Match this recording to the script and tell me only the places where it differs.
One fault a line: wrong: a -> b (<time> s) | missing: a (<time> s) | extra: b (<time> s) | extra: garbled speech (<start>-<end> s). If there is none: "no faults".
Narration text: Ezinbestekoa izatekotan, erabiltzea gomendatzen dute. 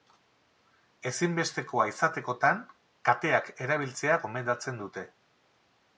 extra: kateak (3.1 s)